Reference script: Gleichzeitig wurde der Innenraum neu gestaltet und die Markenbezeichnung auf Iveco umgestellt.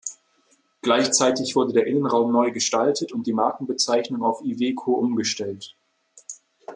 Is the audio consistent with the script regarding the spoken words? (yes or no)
yes